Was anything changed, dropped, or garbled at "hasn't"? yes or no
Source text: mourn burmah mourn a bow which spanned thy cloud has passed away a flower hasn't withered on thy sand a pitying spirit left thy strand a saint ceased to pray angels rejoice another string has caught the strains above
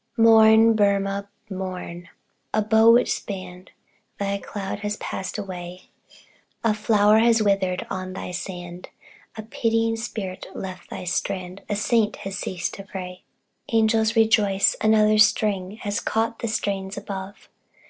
yes